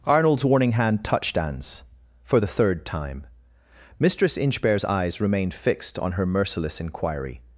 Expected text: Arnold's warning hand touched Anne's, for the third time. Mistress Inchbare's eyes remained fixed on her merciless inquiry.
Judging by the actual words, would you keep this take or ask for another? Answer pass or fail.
pass